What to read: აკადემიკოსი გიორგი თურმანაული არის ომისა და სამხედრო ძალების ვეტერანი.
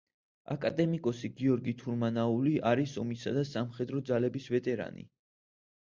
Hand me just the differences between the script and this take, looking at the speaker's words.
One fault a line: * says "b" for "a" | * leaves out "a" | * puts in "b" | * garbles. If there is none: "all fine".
all fine